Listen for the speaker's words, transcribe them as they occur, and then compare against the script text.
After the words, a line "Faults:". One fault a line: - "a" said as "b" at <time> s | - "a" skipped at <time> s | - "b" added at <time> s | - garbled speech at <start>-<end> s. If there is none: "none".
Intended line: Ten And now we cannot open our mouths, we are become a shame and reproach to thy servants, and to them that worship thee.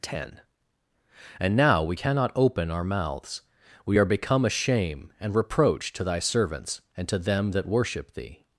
Ten And now we cannot open our mouths, we are become a shame and reproach to thy servants, and to them that worship thee.
Faults:
none